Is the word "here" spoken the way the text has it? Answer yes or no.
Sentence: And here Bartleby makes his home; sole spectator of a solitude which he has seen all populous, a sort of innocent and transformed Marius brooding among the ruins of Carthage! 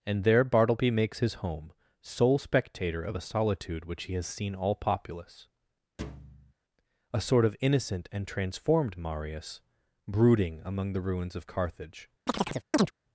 no